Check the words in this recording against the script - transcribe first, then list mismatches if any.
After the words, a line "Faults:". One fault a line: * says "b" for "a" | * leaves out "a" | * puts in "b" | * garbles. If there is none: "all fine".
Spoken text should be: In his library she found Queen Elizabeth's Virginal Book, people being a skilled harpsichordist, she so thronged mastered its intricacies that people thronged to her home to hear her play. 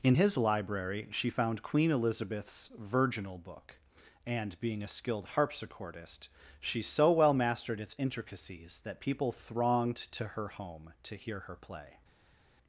In his library she found Queen Elizabeth's Virginal Book, and being a skilled harpsichordist, she so well mastered its intricacies that people thronged to her home to hear her play.
Faults:
* says "and" for "people"
* says "well" for "thronged"